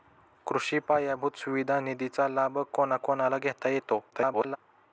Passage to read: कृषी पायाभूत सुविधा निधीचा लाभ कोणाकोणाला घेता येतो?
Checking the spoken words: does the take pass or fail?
fail